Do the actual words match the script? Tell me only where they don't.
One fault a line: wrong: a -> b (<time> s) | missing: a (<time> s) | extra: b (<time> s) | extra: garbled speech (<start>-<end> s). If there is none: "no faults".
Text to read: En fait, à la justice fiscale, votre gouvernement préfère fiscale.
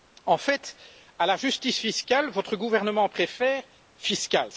no faults